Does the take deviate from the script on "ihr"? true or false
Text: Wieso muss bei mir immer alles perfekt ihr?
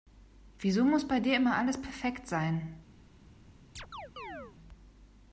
true